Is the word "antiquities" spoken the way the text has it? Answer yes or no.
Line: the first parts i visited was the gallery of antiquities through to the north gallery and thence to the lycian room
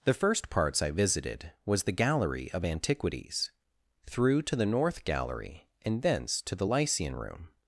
yes